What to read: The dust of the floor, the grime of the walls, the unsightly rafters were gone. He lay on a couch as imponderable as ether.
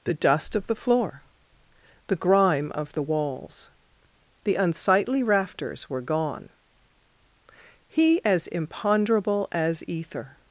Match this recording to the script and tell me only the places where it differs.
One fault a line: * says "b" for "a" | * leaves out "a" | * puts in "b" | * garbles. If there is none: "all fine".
* leaves out "lay on a couch"